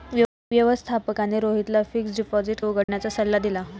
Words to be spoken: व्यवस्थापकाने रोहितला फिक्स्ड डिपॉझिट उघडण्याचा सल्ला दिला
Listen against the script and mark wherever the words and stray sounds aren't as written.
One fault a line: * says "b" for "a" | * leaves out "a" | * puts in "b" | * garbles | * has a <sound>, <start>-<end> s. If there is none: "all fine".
* has a dropout, 2.8-2.9 s